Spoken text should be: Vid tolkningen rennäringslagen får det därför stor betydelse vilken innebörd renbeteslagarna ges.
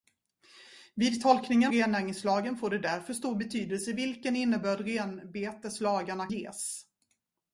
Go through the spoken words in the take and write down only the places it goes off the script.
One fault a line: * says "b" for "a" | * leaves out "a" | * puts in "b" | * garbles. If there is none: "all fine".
all fine